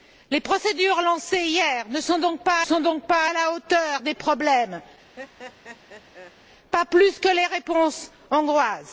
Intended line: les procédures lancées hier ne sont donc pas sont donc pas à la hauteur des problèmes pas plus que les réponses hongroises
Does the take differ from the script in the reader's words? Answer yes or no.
no